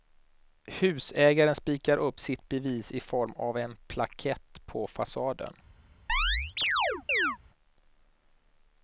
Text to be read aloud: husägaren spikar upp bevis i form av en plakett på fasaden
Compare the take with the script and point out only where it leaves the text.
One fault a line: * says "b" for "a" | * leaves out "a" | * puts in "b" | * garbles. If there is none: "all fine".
* puts in "sitt"